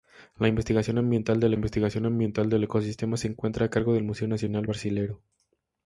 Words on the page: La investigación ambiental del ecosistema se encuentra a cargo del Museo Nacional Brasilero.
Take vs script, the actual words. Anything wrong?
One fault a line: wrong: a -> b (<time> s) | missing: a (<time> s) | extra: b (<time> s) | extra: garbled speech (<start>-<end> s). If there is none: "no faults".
extra: investigación ambiental del (1.5 s)